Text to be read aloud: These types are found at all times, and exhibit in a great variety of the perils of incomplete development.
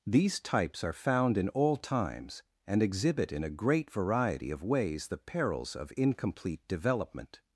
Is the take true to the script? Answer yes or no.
no